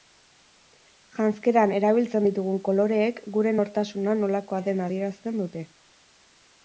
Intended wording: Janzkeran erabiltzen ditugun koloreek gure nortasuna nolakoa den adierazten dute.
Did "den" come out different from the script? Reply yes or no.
no